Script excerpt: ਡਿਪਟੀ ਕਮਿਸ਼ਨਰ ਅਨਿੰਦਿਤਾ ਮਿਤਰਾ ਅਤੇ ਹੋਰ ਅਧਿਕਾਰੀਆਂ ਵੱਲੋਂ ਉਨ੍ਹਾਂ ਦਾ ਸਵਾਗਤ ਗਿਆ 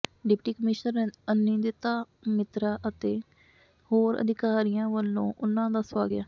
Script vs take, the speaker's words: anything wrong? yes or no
no